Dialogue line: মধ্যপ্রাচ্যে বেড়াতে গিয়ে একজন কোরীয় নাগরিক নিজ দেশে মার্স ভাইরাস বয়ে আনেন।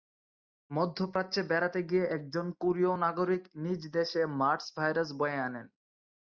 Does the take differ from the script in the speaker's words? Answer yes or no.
no